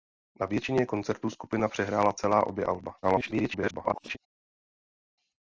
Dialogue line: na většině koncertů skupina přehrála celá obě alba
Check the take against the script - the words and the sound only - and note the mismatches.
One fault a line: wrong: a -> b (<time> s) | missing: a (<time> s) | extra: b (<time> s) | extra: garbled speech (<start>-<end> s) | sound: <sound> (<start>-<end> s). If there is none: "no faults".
extra: garbled speech (3.0-4.2 s)